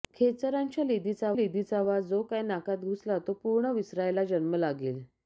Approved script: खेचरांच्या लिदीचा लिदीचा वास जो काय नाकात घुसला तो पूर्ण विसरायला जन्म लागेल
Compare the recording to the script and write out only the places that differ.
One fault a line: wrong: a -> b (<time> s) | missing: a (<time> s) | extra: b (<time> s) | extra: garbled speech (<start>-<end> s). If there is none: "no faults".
no faults